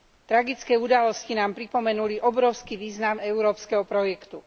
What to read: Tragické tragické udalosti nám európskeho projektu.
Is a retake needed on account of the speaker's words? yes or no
yes